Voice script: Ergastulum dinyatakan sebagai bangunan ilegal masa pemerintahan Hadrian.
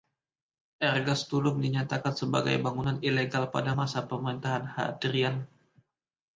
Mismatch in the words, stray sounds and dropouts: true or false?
true